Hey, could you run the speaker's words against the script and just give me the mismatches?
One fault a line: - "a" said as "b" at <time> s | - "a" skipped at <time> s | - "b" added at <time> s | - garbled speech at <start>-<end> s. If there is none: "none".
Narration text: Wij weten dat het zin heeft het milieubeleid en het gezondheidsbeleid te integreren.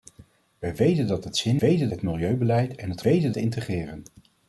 - "heeft" said as "weten" at 1.6 s
- "gezondheidsbeleid" said as "weten" at 3.0 s